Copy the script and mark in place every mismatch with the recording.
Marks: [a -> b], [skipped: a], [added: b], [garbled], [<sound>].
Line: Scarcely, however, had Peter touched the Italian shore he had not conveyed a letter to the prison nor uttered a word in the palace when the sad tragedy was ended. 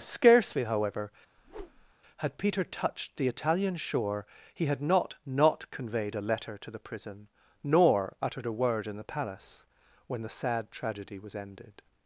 Scarcely, however, [whoosh] had Peter touched the Italian shore he had not [added: not] conveyed a letter to the prison nor uttered a word in the palace when the sad tragedy was ended.